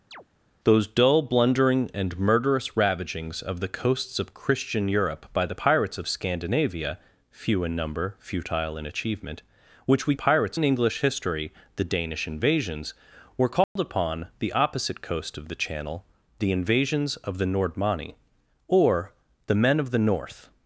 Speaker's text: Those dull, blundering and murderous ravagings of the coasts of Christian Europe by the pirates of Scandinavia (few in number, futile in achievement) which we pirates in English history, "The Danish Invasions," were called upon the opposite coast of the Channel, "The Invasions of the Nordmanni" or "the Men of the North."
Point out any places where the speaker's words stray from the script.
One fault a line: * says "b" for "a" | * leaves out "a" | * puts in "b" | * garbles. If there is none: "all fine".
all fine